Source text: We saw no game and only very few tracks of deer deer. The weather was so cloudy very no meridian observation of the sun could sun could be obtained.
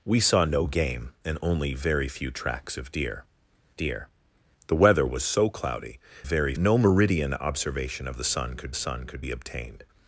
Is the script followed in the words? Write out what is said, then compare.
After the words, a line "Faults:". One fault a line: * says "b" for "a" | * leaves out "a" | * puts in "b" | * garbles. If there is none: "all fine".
We saw no game and only very few tracks of deer deer. The weather was so cloudy very no meridian observation of the sun could sun could be obtained.
Faults:
all fine